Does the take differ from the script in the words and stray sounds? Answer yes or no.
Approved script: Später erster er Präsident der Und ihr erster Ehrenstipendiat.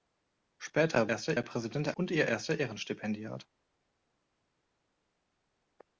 no